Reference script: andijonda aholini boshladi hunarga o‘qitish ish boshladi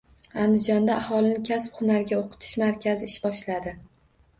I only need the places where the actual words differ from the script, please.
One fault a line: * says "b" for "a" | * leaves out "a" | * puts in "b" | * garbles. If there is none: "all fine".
* says "kasb" for "boshladi"
* puts in "markazi"